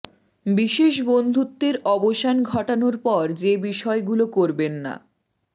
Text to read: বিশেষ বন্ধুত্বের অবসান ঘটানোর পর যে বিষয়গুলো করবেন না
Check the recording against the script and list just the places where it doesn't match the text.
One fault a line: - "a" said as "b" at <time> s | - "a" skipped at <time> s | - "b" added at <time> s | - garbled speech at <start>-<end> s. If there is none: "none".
none